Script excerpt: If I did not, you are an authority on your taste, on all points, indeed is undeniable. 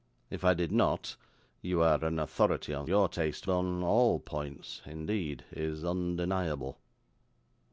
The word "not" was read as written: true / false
true